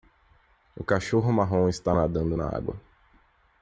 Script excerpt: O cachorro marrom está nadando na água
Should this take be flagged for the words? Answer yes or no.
no